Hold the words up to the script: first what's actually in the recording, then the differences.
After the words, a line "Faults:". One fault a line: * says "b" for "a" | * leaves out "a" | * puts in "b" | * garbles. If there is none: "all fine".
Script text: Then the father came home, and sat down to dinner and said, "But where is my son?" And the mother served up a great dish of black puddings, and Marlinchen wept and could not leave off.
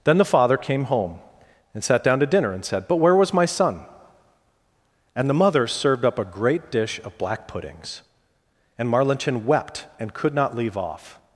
Then the father came home, and sat down to dinner and said, "But where was my son?" And the mother served up a great dish of black puddings, and Marlinchen wept and could not leave off.
Faults:
* says "was" for "is"